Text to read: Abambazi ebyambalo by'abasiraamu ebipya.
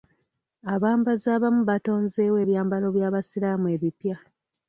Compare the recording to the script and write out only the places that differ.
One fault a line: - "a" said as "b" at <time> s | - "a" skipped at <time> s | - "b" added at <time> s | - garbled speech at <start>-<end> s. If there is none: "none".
- "abamu batonzeewo" added at 1.4 s